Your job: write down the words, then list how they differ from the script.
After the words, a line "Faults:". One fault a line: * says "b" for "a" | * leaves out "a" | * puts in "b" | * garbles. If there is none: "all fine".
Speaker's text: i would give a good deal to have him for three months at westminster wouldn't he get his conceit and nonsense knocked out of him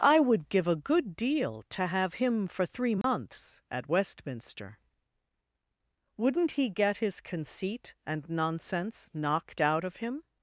i would give a good deal to have him for three months at westminster wouldn't he get his conceit and nonsense knocked out of him
Faults:
all fine